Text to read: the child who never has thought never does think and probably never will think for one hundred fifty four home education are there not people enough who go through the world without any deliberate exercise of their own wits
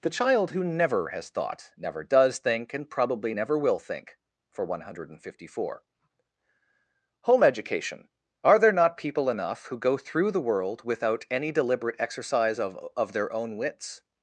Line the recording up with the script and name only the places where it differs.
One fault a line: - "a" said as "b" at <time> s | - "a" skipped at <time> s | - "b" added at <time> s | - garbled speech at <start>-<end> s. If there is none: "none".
- "of" added at 12.9 s